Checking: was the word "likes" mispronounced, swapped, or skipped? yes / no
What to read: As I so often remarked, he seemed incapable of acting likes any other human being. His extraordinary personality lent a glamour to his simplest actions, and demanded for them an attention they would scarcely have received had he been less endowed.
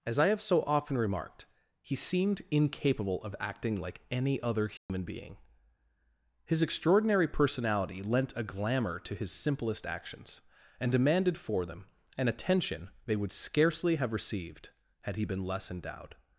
yes